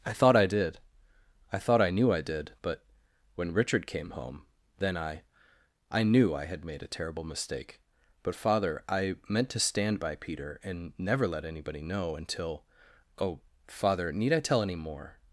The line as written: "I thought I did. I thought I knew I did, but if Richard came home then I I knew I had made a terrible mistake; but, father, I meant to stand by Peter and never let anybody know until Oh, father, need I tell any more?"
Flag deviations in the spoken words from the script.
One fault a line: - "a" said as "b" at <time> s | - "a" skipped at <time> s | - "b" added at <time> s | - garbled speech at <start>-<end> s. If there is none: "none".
- "if" said as "when" at 3.3 s